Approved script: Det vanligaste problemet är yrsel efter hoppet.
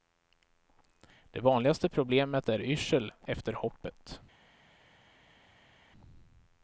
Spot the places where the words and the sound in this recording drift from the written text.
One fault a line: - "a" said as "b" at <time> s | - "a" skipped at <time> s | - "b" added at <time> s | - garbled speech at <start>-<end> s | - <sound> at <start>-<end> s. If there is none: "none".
none